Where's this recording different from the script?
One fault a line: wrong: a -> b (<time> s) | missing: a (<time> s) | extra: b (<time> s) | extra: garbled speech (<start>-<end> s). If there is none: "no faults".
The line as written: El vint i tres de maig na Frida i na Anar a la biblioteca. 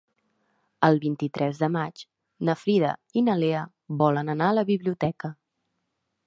extra: Lea volen (3.4 s)